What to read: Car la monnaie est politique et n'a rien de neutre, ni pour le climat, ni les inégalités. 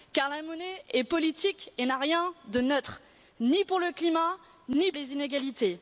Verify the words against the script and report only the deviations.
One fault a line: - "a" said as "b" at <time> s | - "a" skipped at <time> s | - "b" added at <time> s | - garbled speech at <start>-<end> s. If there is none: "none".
none